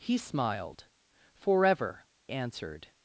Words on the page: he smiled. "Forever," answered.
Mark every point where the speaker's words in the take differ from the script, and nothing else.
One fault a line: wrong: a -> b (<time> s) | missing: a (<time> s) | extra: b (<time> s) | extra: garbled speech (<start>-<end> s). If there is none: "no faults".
no faults